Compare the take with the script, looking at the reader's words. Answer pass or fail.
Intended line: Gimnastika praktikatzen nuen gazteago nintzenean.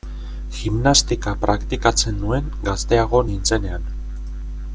pass